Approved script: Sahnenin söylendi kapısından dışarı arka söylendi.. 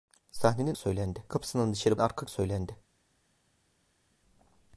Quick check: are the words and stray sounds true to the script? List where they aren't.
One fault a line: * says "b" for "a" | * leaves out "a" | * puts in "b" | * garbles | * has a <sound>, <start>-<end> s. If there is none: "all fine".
all fine